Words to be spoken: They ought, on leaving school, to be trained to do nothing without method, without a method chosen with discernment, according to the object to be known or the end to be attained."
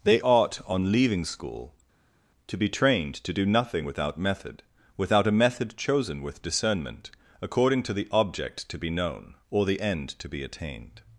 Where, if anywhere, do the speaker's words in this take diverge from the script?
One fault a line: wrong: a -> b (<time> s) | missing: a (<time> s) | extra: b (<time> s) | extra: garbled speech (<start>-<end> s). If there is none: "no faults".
no faults